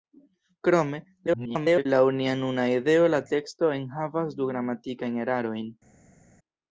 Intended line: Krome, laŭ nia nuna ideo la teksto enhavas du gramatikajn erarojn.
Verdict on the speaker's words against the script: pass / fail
fail